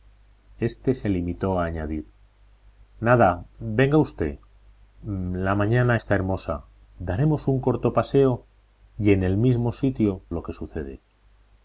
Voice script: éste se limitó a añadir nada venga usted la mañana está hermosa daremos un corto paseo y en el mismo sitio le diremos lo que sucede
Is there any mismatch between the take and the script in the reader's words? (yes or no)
yes